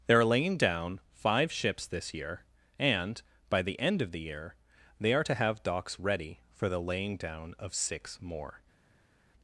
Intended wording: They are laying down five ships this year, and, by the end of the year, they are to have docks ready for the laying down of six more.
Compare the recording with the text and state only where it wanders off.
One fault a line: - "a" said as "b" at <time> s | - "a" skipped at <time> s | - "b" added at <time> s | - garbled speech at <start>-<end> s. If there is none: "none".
none